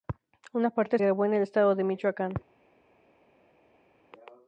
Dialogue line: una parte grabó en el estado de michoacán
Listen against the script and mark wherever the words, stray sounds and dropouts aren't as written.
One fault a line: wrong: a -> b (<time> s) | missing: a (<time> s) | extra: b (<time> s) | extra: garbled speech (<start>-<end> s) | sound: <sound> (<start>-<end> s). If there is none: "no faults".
no faults